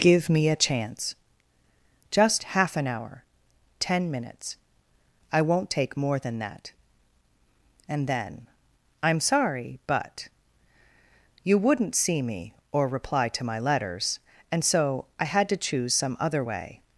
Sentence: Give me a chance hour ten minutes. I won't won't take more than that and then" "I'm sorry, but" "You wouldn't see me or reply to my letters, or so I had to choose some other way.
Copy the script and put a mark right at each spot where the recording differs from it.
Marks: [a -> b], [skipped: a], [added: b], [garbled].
Give me a chance [added: just half an] hour ten minutes. I won't [skipped: won't] take more than that and then" "I'm sorry, but" "You wouldn't see me or reply to my letters, [or -> and] so I had to choose some other way.